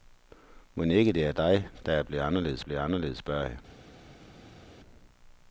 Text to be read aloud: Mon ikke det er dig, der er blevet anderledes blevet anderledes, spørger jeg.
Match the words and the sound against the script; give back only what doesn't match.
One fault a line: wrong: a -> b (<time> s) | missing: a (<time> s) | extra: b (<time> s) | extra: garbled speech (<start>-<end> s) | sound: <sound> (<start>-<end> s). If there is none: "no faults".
no faults